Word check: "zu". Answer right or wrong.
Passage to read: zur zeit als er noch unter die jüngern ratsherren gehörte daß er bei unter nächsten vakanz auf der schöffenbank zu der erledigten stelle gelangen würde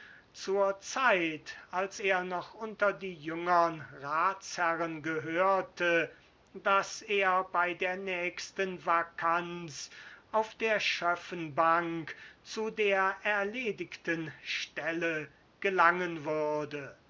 right